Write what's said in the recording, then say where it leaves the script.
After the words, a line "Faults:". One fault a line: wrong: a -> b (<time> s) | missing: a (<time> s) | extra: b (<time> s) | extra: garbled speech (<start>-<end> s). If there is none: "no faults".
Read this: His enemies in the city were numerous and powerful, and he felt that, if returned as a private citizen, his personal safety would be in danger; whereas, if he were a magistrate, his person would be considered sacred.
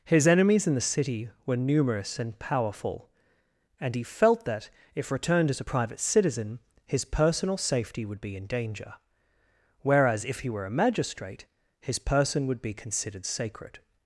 His enemies in the city were numerous and powerful, and he felt that, if returned as a private citizen, his personal safety would be in danger; whereas, if he were a magistrate, his person would be considered sacred.
Faults:
no faults